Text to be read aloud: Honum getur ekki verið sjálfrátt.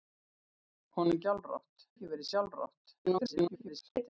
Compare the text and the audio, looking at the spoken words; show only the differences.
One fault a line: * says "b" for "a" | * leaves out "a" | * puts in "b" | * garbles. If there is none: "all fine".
* says "sjálfrátt" for "getur"
* garbles